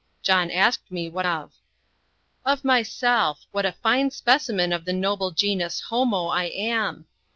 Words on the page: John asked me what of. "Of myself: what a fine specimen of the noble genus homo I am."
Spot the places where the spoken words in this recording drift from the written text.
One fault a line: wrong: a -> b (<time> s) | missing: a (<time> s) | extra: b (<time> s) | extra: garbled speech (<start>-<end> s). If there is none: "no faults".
no faults